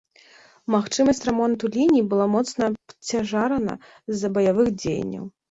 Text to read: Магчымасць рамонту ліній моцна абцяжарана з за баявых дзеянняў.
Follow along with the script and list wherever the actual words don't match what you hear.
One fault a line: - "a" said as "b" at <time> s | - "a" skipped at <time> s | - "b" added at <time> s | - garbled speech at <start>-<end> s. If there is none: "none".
- "была" added at 2.1 s